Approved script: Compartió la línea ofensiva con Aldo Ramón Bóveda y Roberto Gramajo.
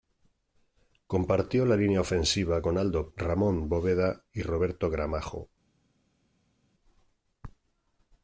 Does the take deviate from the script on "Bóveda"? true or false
false